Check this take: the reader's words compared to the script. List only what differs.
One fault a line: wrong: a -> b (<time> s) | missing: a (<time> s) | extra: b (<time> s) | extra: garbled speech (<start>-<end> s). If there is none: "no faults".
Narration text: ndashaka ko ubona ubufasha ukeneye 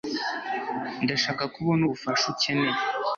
no faults